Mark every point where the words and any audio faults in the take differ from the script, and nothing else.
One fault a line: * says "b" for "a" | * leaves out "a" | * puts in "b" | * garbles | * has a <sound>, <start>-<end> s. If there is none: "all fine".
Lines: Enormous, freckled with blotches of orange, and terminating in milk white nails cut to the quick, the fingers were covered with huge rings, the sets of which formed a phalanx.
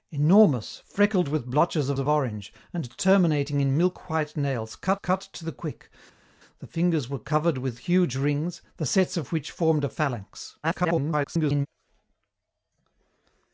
* puts in "of"
* puts in "cut"
* garbles